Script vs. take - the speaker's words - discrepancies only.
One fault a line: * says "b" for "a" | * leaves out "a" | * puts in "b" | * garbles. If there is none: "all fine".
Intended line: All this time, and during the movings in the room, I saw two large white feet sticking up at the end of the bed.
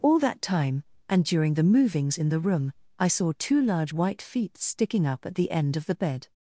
* says "that" for "this"